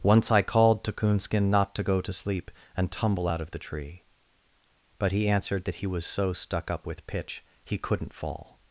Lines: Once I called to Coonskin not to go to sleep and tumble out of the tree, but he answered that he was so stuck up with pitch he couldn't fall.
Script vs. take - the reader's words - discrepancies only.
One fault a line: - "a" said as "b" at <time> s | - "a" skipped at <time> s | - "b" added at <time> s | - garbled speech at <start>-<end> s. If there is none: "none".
none